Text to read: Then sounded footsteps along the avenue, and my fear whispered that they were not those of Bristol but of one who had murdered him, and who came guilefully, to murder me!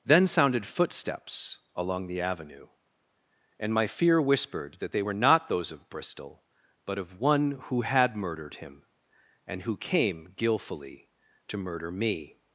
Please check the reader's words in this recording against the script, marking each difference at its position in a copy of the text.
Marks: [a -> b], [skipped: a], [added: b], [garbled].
Then sounded footsteps along the avenue, and my fear whispered that they were not those of Bristol but of one who had murdered him, and who came guilefully, to murder me!